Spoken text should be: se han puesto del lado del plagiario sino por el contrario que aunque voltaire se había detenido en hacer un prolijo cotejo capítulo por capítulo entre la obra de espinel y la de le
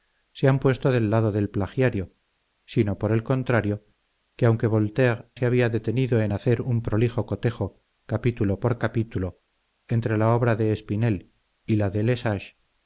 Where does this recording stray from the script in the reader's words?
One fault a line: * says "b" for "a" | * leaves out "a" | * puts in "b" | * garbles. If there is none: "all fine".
all fine